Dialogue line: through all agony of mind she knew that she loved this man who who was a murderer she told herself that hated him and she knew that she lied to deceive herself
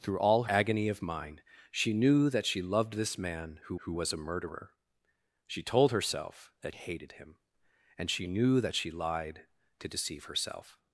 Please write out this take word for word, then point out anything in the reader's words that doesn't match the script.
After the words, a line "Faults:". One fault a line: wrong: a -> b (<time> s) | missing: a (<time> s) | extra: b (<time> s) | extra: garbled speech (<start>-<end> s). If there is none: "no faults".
through all agony of mind she knew that she loved this man who who was a murderer she told herself that hated him and she knew that she lied to deceive herself
Faults:
no faults